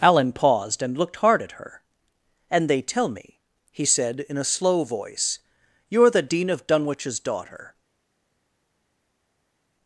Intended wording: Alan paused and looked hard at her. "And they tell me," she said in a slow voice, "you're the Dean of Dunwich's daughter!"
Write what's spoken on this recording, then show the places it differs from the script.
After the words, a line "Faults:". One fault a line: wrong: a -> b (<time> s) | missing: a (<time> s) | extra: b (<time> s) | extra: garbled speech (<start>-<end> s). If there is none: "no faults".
Alan paused and looked hard at her. "And they tell me," he said in a slow voice, "you're the Dean of Dunwich's daughter!"
Faults:
wrong: she -> he (3.7 s)